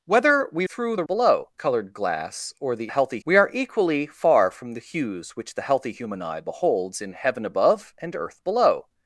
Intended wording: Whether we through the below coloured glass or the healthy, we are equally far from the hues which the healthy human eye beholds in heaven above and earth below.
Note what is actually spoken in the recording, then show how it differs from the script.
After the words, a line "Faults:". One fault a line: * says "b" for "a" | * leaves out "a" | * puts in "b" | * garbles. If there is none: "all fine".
Whether we through the below coloured glass or the healthy, we are equally far from the hues which the healthy human eye beholds in heaven above and earth below.
Faults:
all fine